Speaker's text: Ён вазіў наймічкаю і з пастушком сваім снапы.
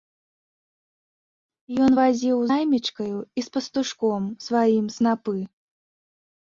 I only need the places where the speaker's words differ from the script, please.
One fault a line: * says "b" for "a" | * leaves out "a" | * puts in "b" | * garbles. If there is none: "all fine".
all fine